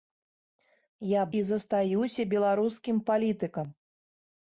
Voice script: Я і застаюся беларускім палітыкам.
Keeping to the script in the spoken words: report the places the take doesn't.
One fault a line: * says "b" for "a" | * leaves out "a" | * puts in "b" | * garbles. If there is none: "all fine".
all fine